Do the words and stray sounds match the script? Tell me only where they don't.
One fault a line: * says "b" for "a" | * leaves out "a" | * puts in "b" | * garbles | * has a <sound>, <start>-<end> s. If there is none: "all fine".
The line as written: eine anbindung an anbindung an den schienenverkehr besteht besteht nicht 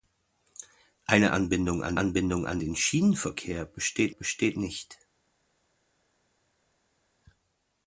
all fine